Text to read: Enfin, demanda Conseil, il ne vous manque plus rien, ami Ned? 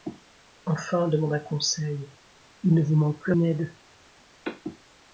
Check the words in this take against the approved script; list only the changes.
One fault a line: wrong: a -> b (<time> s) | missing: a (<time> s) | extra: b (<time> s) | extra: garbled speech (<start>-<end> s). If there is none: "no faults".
missing: rien ami (3.3 s)